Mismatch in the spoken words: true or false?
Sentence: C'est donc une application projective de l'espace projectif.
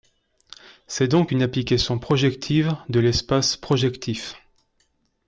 false